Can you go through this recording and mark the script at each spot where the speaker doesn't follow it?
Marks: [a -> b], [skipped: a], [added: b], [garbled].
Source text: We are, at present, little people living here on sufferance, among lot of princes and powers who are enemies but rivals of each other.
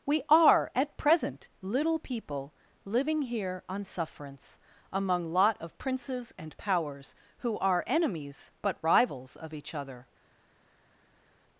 We are, at present, little people living here on sufferance, among lot of princes and powers who are enemies but rivals of each other.